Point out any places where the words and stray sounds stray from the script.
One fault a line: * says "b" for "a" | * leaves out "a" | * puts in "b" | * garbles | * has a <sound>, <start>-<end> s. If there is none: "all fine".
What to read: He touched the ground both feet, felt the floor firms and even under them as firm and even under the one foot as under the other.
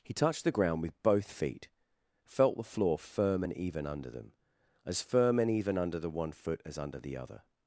* puts in "with"
* says "firm" for "firms"